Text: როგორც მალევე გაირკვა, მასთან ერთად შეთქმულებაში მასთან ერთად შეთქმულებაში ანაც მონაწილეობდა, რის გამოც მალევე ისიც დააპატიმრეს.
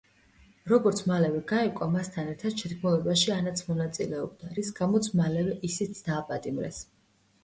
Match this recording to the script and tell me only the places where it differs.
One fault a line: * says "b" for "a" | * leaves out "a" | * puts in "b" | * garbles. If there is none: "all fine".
* leaves out "მასთან ერთად შეთქმულებაში"